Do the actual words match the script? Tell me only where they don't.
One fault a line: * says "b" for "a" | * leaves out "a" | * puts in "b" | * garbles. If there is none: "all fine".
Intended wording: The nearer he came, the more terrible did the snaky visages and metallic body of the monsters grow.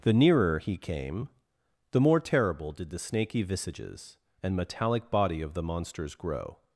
all fine